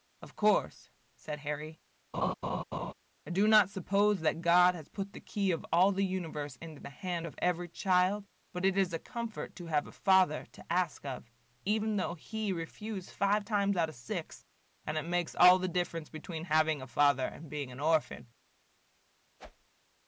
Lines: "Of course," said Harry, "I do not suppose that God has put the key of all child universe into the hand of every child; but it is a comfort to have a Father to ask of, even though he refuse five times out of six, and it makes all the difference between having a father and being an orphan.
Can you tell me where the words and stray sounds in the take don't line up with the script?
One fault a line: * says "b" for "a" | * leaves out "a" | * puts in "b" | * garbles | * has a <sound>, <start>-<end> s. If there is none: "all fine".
* has a laugh, 2.1-2.9 s
* says "the" for "child"
* has a whoosh, 19.4-19.7 s